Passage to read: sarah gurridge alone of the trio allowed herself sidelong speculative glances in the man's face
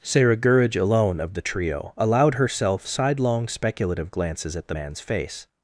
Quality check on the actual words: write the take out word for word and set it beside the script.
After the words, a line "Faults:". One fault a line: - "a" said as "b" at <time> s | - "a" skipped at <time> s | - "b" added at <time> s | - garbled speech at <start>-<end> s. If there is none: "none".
sarah gurridge alone of the trio allowed herself sidelong speculative glances at the man's face
Faults:
- "in" said as "at" at 4.6 s